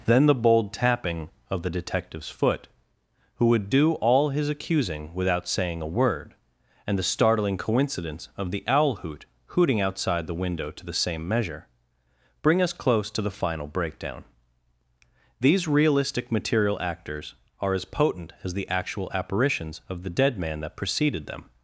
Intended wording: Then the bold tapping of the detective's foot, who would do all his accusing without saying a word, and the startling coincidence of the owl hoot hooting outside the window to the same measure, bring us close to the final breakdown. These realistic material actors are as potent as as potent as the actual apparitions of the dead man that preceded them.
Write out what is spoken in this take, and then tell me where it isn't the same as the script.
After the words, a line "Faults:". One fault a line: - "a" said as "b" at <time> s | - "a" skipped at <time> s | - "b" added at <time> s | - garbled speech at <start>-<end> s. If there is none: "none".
Then the bold tapping of the detective's foot, who would do all his accusing without saying a word, and the startling coincidence of the owl hoot hooting outside the window to the same measure, bring us close to the final breakdown. These realistic material actors are as potent as the actual apparitions of the dead man that preceded them.
Faults:
- "as potent as" skipped at 18.5 s